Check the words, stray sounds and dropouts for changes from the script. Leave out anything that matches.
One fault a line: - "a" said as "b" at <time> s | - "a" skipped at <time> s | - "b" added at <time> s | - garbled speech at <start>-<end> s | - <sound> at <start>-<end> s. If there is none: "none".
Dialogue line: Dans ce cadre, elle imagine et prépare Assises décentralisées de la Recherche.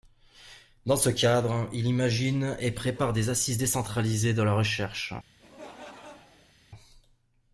- "elle" said as "il" at 1.7 s
- "des" added at 3.1 s
- laugh at 5.4-6.5 s